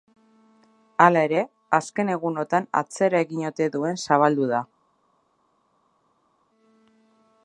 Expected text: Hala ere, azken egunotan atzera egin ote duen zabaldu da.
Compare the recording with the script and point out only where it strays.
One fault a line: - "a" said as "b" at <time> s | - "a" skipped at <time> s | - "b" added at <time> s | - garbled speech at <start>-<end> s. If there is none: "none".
none